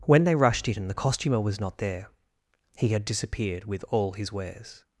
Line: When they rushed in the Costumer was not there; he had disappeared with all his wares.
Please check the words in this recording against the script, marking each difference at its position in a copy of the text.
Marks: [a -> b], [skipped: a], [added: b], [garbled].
When they rushed in the Costumer was not there; he had disappeared with all his wares.